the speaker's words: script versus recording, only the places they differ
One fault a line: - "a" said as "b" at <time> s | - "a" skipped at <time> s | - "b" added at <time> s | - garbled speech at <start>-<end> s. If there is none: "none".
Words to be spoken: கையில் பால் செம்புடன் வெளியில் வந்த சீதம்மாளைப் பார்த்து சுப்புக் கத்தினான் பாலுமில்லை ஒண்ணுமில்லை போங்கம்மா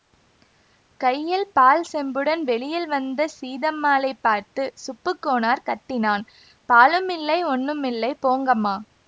- "கோனார்" added at 5.2 s